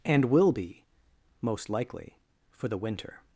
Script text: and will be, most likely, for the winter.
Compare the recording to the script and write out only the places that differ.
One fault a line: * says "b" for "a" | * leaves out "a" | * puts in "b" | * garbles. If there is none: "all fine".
all fine